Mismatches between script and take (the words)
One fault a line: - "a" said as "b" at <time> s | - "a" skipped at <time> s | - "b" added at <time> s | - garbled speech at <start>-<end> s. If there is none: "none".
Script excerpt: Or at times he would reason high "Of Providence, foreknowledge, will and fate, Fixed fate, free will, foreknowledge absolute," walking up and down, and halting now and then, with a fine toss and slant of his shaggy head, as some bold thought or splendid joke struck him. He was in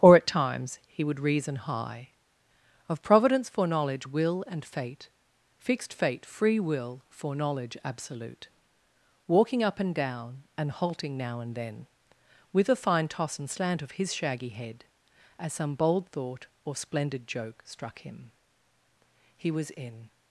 none